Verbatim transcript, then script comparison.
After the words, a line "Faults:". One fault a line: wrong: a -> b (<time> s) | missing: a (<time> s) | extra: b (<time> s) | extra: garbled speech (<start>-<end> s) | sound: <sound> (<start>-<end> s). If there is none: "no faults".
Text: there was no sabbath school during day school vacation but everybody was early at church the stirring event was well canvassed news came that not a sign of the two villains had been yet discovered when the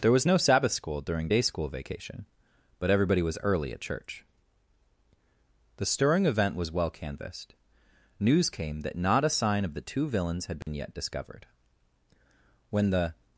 there was no sabbath school during day school vacation but everybody was early at church the stirring event was well canvassed news came that not a sign of the two villains had been yet discovered when the
Faults:
sound: dropout (10.6-10.7 s)